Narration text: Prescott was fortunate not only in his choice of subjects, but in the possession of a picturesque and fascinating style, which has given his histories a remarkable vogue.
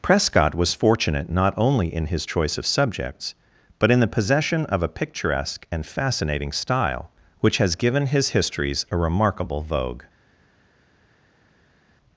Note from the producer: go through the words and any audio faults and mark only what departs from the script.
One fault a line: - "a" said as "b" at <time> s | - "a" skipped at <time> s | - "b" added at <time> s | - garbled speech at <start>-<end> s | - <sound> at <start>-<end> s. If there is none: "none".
none